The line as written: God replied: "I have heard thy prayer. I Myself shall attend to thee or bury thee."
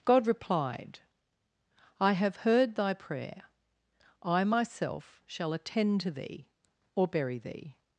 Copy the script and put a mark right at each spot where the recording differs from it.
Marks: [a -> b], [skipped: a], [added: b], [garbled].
God replied: "I have heard thy prayer. I Myself shall attend to thee or bury thee."